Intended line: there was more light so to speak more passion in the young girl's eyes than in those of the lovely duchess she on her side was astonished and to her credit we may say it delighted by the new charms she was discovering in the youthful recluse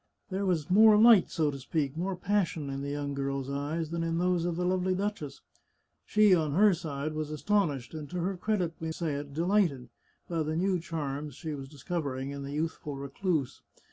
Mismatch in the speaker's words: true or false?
true